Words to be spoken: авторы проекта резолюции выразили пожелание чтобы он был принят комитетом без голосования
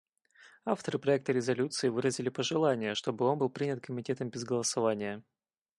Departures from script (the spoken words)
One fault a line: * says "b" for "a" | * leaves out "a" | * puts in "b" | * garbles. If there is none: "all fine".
all fine